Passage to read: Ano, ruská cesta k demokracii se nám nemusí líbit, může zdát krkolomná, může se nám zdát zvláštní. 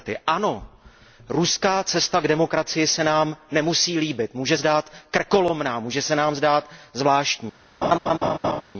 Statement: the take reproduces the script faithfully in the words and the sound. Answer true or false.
false